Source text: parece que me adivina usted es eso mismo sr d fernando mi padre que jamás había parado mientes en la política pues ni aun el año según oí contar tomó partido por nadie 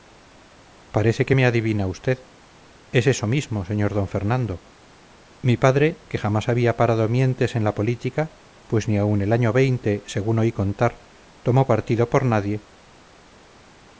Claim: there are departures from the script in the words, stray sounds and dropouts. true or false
false